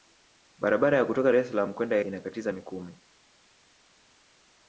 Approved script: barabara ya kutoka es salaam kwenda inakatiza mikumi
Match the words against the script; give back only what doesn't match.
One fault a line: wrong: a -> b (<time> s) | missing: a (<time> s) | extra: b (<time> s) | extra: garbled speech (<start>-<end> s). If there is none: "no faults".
no faults